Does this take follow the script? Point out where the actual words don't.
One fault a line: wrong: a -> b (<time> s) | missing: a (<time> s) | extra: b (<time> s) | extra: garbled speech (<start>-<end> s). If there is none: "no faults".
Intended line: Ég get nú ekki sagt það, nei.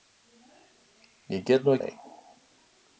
missing: ekki sagt það (1.8 s)